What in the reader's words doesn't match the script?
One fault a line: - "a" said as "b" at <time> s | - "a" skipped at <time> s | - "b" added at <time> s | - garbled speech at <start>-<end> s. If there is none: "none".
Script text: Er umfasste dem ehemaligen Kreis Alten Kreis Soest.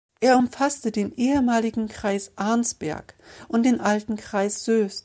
- "dem" said as "den" at 0.9 s
- "Arnsberg und den" added at 2.4 s